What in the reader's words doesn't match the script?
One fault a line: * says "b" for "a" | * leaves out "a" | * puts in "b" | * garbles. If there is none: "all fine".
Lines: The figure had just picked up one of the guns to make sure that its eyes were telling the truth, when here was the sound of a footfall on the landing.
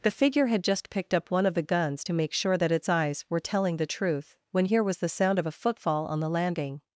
all fine